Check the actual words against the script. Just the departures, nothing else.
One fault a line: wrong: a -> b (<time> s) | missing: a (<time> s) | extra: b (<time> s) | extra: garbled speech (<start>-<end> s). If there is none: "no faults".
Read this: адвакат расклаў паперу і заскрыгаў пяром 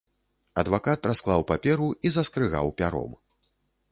no faults